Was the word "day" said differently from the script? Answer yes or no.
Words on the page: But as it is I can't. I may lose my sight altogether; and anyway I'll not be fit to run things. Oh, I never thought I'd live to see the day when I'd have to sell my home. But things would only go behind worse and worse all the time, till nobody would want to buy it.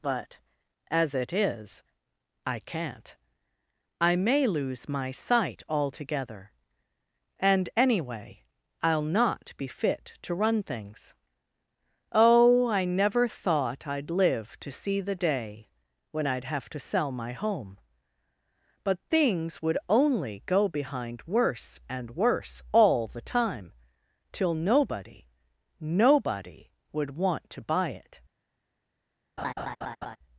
no